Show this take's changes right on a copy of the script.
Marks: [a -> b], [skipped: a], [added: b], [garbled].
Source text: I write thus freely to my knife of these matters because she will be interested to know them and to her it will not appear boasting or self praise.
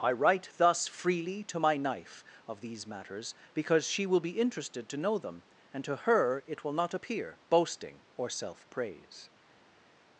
I write thus freely to my knife of these matters because she will be interested to know them and to her it will not appear boasting or self praise.